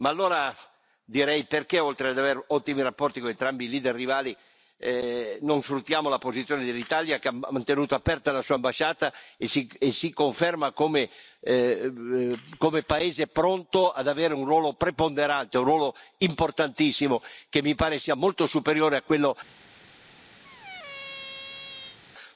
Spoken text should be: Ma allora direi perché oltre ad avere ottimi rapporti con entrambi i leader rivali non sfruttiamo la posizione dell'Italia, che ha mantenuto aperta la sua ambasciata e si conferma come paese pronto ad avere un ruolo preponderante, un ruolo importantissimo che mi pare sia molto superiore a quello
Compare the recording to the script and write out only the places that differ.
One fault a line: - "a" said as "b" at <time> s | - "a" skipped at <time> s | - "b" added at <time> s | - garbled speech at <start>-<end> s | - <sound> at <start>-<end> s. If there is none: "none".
- squeak at 20.4-22.0 s